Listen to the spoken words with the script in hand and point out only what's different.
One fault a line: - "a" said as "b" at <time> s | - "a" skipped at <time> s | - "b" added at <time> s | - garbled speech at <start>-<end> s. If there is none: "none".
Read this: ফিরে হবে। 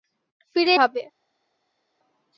none